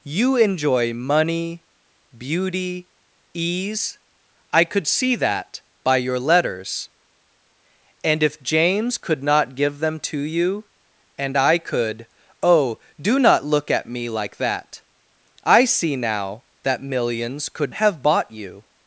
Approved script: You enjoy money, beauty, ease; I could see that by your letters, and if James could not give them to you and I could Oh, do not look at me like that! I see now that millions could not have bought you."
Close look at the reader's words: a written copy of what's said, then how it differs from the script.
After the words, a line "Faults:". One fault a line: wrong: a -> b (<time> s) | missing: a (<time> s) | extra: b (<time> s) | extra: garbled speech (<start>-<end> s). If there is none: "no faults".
You enjoy money, beauty, ease; I could see that by your letters, and if James could not give them to you and I could Oh, do not look at me like that! I see now that millions could have bought you."
Faults:
missing: not (17.7 s)